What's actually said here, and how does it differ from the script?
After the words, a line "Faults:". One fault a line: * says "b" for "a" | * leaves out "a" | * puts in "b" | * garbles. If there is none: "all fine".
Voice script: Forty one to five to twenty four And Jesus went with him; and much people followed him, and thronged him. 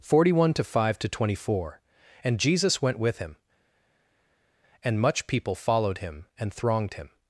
Forty one to five to twenty four And Jesus went with him; and much people followed him, and thronged him.
Faults:
all fine